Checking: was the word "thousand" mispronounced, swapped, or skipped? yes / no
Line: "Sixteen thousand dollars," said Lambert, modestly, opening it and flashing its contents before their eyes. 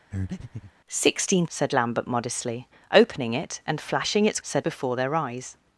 yes